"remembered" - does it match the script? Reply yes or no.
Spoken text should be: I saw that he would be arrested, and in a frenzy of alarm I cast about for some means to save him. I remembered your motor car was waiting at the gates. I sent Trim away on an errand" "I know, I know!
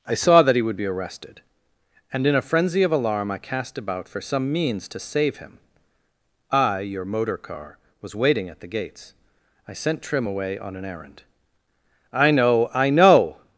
no